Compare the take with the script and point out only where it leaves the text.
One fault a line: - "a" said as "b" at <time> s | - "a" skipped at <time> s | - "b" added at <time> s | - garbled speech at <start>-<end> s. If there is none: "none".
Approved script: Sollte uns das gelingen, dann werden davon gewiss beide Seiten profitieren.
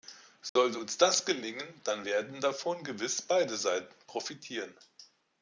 none